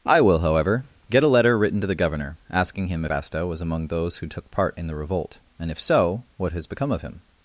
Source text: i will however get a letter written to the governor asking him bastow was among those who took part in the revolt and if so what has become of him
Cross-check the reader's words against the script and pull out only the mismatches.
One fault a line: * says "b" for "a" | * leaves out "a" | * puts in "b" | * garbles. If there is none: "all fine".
all fine